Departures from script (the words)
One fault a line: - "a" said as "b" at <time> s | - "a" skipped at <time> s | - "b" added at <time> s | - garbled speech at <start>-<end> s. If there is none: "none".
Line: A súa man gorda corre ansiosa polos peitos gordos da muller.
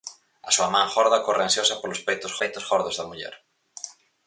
- "peitos" added at 2.4 s